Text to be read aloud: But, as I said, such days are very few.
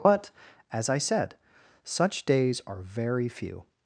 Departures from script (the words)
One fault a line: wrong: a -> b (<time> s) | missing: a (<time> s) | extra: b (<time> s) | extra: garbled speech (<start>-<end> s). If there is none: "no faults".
no faults